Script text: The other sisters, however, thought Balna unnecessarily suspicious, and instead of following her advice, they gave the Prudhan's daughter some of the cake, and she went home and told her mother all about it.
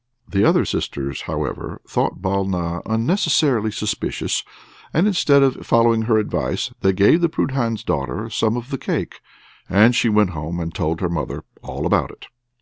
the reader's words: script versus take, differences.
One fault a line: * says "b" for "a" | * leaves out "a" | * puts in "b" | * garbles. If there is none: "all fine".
all fine